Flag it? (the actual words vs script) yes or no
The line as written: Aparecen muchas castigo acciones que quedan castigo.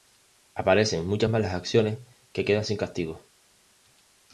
yes